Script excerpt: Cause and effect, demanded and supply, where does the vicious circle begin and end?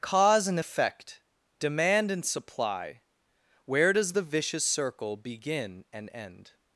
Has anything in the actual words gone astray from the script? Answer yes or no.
yes